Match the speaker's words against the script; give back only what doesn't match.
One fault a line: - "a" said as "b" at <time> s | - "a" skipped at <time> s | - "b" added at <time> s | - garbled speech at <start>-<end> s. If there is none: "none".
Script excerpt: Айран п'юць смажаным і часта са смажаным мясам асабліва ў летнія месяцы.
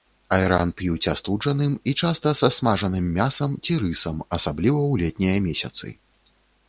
- "смажаным" said as "астуджаным" at 1.1 s
- "ці рысам" added at 3.6 s